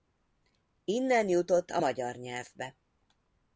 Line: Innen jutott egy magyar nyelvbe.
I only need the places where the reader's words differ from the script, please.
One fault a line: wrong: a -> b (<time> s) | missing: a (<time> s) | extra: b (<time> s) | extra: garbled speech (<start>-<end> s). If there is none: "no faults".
wrong: egy -> a (1.7 s)